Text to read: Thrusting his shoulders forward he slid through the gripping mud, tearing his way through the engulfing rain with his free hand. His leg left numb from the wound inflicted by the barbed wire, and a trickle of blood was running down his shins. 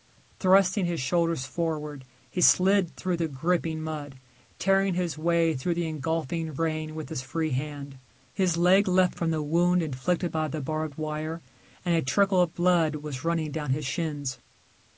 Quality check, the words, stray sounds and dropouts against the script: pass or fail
fail